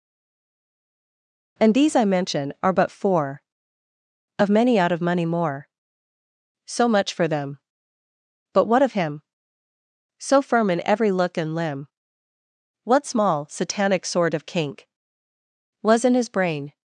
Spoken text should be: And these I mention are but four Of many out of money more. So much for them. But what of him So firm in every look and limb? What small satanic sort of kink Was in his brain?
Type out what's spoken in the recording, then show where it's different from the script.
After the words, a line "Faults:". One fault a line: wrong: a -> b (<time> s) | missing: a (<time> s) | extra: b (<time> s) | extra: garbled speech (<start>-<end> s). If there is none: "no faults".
And these I mention are but four Of many out of money more. So much for them. But what of him So firm in every look and limb? What small satanic sort of kink Was in his brain?
Faults:
no faults